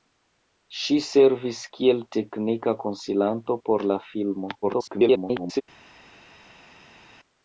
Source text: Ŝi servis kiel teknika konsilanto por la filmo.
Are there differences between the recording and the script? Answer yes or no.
yes